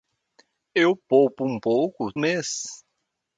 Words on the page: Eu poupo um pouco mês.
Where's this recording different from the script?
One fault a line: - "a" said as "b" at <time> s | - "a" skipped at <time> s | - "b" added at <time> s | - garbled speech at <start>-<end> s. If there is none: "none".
none